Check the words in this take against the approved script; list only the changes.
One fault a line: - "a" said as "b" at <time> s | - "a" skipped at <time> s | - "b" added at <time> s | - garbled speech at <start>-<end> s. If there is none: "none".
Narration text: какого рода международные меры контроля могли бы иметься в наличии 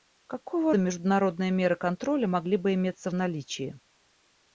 - "рода" skipped at 0.7 s